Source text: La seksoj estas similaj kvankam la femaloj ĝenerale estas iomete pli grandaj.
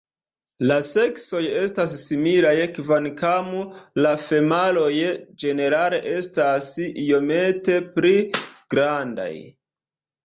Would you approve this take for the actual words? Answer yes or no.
yes